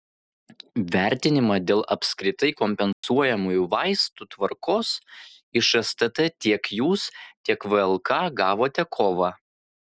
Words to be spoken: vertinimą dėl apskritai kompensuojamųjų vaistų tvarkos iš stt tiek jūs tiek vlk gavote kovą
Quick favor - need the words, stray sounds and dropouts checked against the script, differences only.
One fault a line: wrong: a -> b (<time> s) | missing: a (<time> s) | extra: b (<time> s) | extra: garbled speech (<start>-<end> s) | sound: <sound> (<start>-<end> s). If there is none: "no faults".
sound: dropout (2.9-3.0 s)